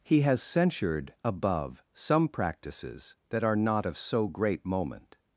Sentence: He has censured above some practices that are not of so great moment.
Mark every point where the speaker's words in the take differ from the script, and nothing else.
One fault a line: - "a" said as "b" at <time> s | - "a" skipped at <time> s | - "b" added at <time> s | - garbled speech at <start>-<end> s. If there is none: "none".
none